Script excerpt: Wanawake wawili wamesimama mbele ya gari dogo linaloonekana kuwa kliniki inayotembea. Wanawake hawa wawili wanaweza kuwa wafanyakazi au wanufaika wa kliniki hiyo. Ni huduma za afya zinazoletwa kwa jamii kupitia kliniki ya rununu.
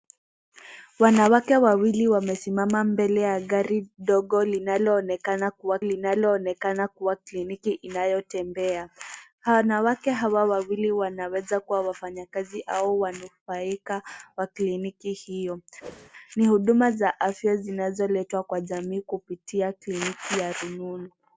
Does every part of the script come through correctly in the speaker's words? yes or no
no